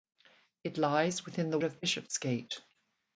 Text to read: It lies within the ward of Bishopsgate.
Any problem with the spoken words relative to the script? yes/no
yes